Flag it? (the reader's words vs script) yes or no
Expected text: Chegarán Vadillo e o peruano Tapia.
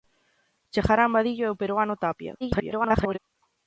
yes